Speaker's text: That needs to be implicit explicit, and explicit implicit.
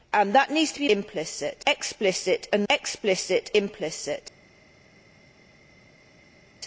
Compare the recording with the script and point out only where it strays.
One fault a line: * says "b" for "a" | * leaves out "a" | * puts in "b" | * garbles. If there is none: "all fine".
all fine